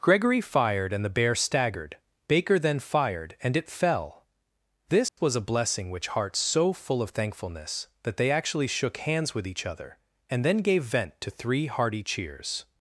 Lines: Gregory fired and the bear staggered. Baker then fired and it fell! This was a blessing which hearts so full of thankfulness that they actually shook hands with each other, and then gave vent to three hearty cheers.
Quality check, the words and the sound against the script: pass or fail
fail